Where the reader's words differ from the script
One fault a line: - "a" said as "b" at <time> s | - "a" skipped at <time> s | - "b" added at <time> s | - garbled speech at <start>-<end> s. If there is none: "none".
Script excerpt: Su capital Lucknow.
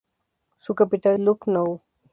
none